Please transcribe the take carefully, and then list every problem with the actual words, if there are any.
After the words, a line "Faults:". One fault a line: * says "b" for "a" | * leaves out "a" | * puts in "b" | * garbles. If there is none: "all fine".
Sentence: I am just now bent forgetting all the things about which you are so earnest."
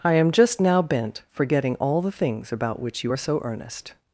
I am just now bent forgetting all the things about which you are so earnest."
Faults:
all fine